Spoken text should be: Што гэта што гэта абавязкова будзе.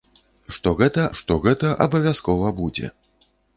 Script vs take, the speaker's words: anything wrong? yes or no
no